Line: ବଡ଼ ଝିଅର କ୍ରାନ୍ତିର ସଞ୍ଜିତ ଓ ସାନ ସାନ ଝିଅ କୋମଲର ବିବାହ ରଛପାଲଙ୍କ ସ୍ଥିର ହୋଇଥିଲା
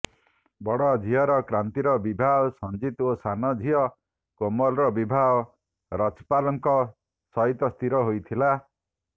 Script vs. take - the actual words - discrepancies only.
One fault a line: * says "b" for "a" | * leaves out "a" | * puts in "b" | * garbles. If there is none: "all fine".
* puts in "ବିବାହ"
* leaves out "ସାନ"
* puts in "ସହିତ"